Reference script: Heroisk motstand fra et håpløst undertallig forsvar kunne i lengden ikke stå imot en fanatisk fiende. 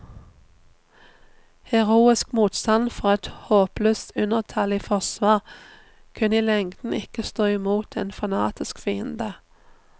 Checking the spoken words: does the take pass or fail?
pass